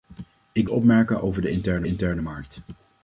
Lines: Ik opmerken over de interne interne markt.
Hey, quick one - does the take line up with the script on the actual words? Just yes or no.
yes